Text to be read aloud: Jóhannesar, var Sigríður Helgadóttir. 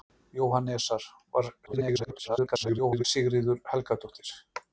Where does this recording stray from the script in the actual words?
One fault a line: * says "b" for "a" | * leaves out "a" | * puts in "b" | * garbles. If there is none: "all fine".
* garbles